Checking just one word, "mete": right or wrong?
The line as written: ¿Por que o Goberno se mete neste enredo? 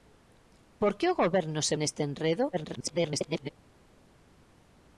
wrong